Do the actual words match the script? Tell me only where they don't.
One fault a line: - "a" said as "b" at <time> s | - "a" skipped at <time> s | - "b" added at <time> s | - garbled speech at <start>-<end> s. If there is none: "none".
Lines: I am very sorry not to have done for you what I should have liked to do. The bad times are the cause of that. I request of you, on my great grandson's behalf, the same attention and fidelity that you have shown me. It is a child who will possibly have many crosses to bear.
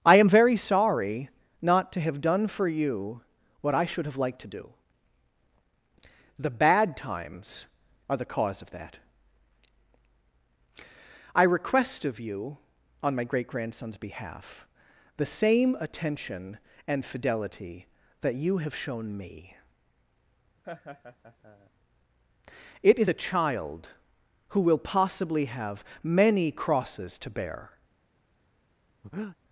none